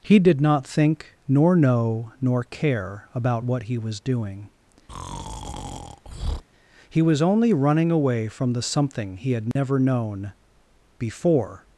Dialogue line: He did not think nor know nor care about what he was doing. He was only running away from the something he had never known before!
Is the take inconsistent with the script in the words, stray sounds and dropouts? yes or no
yes